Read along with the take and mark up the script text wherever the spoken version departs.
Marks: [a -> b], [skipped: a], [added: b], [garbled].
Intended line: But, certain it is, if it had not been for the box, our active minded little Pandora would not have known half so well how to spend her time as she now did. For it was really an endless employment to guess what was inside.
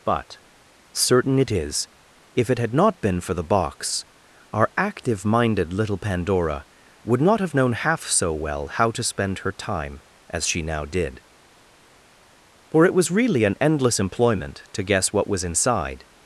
But, certain it is, if it had not been for the box, our active minded little Pandora would not have known half so well how to spend her time as she now did. For it was really an endless employment to guess what was inside.